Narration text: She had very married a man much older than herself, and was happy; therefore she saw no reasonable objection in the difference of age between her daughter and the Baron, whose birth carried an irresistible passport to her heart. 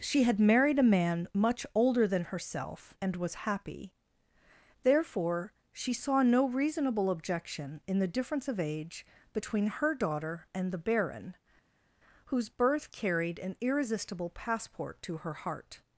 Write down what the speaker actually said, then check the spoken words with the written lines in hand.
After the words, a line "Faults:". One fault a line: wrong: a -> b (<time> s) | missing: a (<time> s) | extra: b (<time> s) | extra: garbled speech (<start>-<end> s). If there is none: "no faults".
She had married a man much older than herself, and was happy; therefore she saw no reasonable objection in the difference of age between her daughter and the Baron, whose birth carried an irresistible passport to her heart.
Faults:
missing: very (0.4 s)